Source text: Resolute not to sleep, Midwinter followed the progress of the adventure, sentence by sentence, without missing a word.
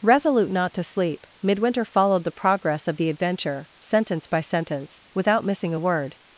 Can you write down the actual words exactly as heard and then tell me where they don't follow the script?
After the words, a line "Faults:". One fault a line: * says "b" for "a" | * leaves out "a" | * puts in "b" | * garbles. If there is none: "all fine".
Resolute not to sleep, Midwinter followed the progress of the adventure, sentence by sentence, without missing a word.
Faults:
all fine